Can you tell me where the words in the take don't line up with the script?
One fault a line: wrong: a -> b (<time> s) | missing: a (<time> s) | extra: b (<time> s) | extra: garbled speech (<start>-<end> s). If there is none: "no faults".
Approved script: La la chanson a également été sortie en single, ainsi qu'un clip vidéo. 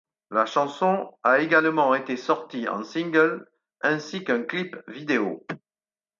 missing: la (0.5 s)